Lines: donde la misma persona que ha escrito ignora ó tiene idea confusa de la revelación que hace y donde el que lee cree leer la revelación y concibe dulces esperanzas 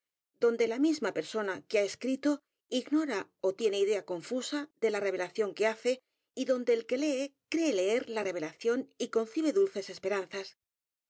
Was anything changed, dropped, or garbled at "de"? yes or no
no